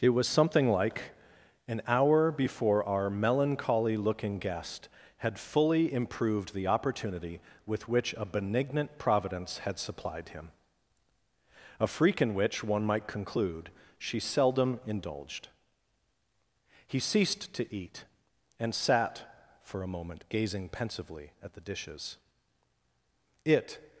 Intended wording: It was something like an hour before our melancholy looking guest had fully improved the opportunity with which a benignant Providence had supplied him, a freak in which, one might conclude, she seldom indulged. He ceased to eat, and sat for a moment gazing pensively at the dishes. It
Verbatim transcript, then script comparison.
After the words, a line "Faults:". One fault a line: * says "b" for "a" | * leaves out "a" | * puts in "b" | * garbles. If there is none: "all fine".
It was something like an hour before our melancholy looking guest had fully improved the opportunity with which a benignant Providence had supplied him, a freak in which, one might conclude, she seldom indulged. He ceased to eat, and sat for a moment gazing pensively at the dishes. It
Faults:
all fine